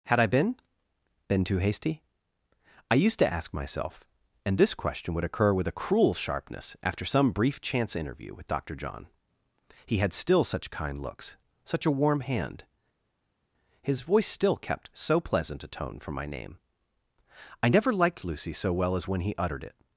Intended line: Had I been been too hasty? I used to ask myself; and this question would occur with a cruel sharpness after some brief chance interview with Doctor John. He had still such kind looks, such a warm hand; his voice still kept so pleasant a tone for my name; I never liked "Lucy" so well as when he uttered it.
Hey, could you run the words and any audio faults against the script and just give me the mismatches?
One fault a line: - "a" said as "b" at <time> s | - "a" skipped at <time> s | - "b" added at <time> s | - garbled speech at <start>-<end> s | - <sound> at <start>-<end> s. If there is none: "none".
none